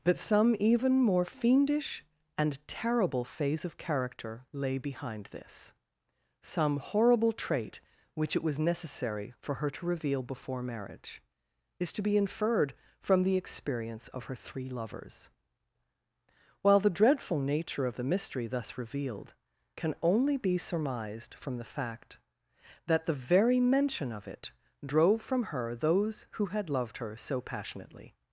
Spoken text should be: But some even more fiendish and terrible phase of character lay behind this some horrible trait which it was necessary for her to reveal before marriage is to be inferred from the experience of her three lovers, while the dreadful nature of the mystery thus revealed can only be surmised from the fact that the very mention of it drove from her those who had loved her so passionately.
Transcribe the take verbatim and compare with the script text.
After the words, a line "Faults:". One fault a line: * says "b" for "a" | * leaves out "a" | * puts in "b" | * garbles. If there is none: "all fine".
But some even more fiendish and terrible phase of character lay behind this some horrible trait which it was necessary for her to reveal before marriage is to be inferred from the experience of her three lovers, while the dreadful nature of the mystery thus revealed can only be surmised from the fact that the very mention of it drove from her those who had loved her so passionately.
Faults:
all fine